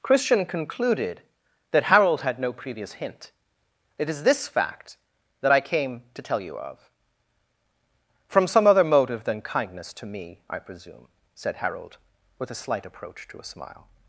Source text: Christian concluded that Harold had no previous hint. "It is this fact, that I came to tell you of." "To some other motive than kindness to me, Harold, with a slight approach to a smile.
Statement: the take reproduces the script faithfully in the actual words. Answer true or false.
false